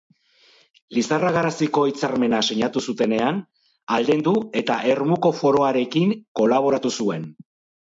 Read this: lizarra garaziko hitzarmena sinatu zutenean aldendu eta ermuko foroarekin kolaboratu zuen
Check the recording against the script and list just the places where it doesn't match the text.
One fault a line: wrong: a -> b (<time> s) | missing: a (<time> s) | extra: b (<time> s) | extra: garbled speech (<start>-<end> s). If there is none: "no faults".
no faults